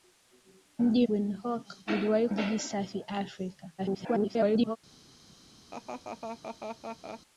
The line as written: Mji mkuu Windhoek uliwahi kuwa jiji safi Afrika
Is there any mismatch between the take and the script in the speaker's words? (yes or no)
yes